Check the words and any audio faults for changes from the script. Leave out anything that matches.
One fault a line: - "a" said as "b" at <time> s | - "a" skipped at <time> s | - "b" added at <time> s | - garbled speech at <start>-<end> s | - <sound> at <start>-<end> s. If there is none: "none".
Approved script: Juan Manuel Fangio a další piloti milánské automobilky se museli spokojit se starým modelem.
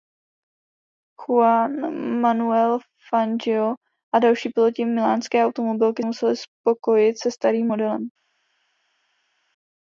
- "se" skipped at 6.0 s